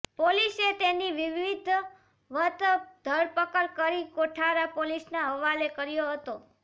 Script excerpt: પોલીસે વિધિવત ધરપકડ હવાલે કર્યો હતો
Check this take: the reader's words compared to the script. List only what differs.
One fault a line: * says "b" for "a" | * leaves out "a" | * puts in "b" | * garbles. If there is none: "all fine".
* puts in "તેની"
* puts in "કરી કોઠારા પોલીસના"